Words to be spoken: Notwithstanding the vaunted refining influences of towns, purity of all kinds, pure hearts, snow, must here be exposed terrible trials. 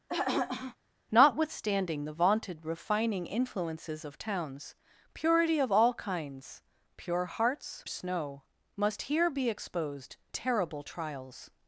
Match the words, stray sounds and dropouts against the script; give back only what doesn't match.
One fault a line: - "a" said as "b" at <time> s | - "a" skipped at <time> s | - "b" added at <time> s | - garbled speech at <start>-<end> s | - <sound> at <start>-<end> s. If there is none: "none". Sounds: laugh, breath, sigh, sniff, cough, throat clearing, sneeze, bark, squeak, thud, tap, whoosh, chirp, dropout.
- throat clearing at 0.1-0.8 s